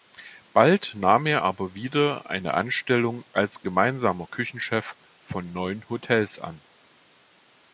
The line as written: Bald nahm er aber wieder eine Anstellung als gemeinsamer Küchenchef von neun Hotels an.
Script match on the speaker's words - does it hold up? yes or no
yes